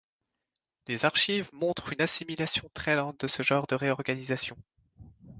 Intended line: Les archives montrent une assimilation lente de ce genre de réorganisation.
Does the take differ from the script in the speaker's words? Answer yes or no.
yes